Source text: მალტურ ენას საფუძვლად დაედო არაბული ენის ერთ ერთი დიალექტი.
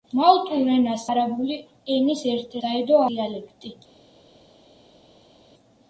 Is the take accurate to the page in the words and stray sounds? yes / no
no